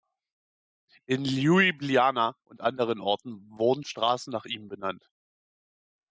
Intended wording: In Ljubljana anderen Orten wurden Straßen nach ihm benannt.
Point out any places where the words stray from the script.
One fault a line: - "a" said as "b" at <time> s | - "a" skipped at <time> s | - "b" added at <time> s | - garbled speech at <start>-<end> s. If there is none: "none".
- "und" added at 2.4 s